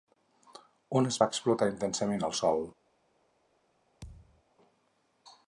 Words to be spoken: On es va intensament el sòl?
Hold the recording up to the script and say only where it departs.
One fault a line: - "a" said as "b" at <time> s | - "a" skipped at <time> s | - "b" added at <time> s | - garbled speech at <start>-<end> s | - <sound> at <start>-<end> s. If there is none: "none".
- "explotar" added at 1.3 s
- thud at 4.0-4.4 s